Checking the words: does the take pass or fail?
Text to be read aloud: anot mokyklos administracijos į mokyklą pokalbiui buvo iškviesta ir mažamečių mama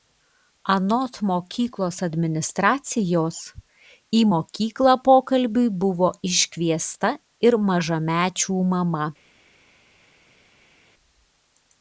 pass